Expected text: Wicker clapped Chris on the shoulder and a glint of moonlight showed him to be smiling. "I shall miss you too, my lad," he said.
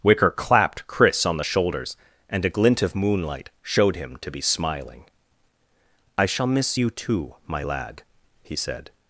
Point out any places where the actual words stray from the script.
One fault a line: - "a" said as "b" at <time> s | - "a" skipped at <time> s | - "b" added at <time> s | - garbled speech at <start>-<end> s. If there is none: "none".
- "shoulder" said as "shoulders" at 1.4 s